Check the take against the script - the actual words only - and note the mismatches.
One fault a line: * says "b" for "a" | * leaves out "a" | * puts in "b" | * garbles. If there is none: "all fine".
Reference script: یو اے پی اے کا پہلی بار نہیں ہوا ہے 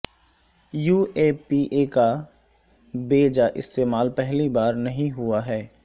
* puts in "بے جا استعمال"